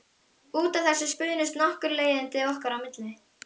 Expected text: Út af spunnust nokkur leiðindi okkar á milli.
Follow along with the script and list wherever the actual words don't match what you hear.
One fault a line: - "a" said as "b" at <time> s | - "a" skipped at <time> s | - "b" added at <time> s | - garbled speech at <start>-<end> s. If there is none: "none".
- "þessu" added at 0.9 s